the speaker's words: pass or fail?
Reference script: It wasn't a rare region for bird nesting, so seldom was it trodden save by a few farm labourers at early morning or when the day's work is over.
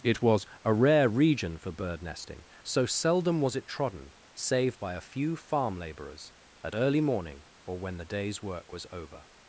fail